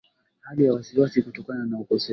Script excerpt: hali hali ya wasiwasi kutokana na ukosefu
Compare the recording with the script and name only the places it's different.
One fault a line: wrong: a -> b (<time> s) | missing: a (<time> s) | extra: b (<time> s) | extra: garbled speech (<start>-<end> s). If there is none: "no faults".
missing: hali (0.7 s)